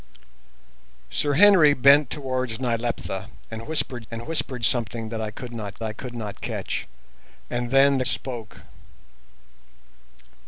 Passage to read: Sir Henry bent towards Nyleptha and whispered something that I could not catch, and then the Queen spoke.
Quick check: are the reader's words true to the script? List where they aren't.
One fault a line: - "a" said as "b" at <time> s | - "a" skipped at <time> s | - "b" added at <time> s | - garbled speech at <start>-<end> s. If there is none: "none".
- "and whispered" added at 4.1 s
- "I could not" added at 5.8 s
- "Queen" skipped at 8.1 s